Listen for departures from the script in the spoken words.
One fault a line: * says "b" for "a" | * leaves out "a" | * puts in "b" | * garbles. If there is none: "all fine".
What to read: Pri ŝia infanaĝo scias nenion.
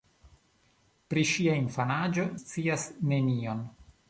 all fine